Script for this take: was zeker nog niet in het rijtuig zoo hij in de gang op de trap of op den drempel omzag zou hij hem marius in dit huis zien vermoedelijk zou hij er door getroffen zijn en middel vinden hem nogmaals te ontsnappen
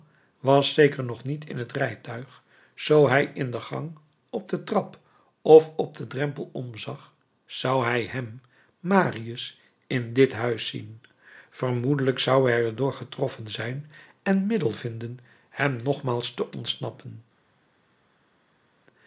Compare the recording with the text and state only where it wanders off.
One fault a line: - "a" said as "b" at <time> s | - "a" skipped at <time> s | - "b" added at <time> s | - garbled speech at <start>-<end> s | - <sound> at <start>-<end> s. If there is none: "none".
none